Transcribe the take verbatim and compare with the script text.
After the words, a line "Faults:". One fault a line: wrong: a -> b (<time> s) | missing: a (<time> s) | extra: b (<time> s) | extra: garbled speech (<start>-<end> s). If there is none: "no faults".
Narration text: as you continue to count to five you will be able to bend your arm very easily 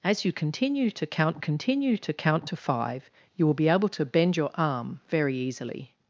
as you continue to count continue to count to five you will be able to bend your arm very easily
Faults:
extra: continue to count (1.4 s)